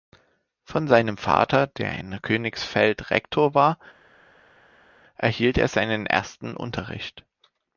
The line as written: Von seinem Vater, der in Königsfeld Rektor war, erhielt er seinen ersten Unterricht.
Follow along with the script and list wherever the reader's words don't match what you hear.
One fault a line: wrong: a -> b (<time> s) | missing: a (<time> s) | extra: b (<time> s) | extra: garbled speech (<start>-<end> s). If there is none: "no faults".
no faults